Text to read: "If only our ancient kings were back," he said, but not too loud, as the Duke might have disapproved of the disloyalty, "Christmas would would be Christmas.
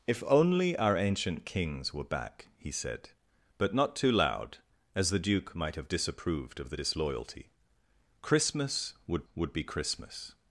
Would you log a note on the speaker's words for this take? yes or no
no